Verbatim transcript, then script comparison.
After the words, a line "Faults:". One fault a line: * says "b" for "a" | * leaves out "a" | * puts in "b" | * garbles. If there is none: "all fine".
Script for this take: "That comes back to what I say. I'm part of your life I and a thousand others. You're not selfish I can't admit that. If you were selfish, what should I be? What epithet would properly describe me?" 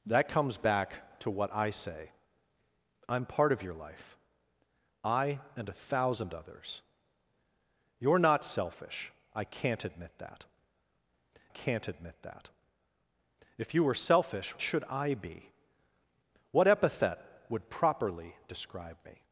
"That comes back to what I say. I'm part of your life I and a thousand others. You're not selfish I can't admit that can't admit that. If you were selfish, should I be? What epithet would properly describe me?"
Faults:
* puts in "can't admit that"
* leaves out "what"